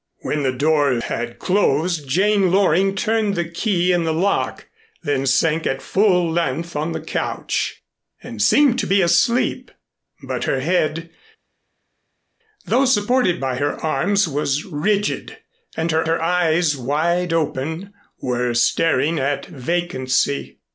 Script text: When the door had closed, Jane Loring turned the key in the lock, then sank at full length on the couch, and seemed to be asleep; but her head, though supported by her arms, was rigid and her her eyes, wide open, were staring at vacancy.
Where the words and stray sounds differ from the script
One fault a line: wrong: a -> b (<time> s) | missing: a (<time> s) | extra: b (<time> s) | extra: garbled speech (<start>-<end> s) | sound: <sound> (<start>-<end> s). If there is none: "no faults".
no faults